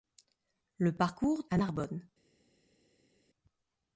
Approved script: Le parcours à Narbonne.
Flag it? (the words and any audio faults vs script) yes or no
no